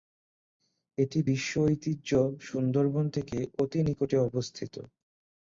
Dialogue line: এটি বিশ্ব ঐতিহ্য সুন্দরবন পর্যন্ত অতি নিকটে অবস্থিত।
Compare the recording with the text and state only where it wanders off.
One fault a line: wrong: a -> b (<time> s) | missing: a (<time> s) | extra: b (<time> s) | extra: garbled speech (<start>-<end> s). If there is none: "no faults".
wrong: পর্যন্ত -> থেকে (3.1 s)